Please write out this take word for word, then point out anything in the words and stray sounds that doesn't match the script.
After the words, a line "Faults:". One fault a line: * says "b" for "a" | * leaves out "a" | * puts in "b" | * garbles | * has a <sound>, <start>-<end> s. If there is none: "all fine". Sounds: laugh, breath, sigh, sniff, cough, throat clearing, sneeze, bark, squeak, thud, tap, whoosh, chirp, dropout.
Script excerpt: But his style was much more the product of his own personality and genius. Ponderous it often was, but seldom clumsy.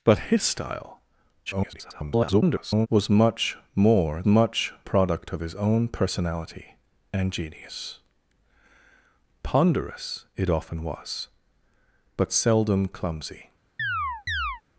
But his style [garbled] was much more much product of his own personality and genius. Ponderous it often was, but seldom clumsy.
Faults:
* garbles
* says "much" for "the"
* has a chirp, 13.8-14.6 s